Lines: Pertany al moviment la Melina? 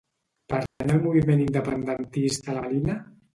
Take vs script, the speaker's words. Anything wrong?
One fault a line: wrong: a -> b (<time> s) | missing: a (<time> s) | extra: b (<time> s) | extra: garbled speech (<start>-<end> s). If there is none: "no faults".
extra: independentista (1.5 s)